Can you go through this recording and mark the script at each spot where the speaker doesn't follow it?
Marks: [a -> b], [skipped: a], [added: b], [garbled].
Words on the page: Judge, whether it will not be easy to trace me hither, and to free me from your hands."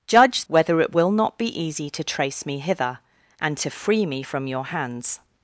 Judge, whether it will not be easy to trace me hither, and to free me from your hands."